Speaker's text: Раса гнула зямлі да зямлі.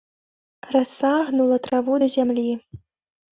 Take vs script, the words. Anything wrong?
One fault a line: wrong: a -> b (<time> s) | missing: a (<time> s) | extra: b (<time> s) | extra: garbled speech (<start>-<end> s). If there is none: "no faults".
wrong: зямлі -> траву (1.6 s)